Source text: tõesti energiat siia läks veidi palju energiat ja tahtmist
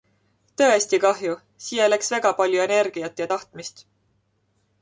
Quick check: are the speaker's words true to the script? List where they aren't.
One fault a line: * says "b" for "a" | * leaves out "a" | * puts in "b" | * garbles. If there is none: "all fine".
* says "kahju" for "energiat"
* says "väga" for "veidi"